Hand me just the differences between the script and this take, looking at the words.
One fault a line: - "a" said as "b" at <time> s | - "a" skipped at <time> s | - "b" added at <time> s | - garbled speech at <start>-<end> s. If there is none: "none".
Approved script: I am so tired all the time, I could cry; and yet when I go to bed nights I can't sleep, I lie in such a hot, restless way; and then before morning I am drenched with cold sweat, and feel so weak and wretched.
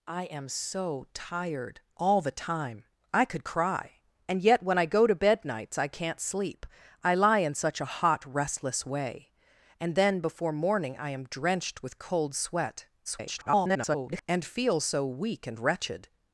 - garbled speech at 13.1-14.2 s